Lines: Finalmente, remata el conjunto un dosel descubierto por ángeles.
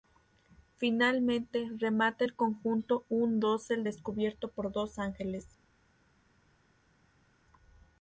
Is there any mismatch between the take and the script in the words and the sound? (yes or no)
yes